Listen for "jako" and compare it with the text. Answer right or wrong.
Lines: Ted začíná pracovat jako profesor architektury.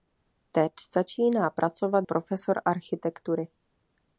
wrong